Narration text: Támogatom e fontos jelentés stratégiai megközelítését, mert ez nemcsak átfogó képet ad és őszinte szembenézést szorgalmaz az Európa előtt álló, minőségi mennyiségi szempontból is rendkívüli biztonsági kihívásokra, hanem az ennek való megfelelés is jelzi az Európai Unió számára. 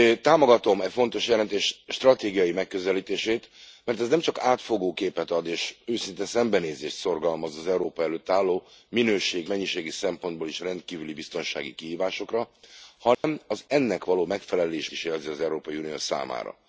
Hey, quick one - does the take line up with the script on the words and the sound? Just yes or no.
no